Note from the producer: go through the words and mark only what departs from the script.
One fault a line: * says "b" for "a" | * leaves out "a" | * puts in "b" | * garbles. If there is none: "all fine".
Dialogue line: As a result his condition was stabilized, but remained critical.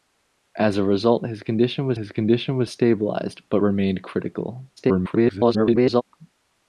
* puts in "his condition was"
* garbles